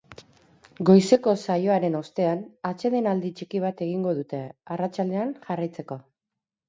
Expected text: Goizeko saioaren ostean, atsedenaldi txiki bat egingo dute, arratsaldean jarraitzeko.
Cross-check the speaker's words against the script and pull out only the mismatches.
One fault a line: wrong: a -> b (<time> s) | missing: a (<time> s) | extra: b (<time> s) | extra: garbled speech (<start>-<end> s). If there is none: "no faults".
no faults